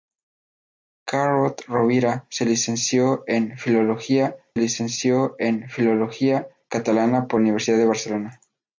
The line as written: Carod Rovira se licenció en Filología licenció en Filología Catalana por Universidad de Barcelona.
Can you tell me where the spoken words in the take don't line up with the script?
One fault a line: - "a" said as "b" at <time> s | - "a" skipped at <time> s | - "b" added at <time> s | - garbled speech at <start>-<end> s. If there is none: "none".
none